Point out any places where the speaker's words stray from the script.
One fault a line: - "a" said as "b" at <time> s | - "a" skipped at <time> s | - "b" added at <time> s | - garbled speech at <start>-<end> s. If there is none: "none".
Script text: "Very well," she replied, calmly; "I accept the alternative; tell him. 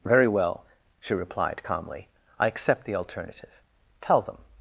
- "him" said as "them" at 4.2 s